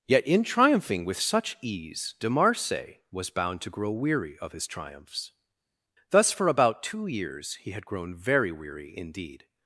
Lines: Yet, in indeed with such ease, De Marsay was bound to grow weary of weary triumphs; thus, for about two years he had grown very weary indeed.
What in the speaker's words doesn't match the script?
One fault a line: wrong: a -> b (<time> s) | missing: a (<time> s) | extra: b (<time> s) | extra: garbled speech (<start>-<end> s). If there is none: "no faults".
wrong: indeed -> triumphing (0.4 s)
wrong: weary -> his (4.5 s)